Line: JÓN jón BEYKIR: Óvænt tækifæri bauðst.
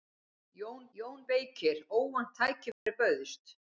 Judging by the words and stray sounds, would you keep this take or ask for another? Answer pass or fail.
fail